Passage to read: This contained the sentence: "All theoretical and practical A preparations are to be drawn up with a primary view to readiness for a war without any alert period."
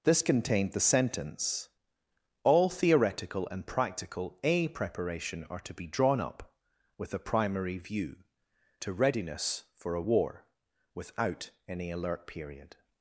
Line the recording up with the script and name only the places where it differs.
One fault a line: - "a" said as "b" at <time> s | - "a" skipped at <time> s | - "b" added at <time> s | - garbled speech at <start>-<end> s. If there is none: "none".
- "preparations" said as "preparation" at 4.7 s